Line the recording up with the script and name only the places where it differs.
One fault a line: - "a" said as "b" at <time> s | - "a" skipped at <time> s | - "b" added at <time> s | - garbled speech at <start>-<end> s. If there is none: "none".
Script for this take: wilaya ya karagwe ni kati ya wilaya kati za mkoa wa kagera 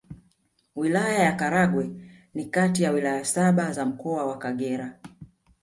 - "kati" said as "saba" at 3.2 s